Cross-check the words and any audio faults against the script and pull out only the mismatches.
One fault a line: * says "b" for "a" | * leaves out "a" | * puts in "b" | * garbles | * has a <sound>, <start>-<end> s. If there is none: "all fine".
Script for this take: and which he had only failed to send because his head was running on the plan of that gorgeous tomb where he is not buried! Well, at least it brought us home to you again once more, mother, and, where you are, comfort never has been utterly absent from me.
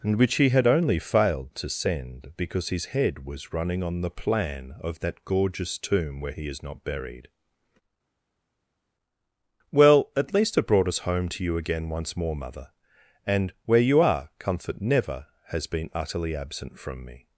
all fine